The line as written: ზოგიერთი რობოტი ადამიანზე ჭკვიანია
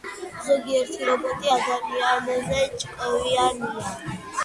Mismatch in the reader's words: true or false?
false